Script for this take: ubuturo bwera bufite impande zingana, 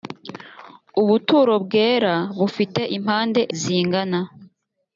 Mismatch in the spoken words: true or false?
false